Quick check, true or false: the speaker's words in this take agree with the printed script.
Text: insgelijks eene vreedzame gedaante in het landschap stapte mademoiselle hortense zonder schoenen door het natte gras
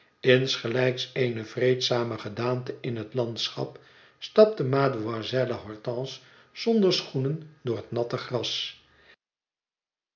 true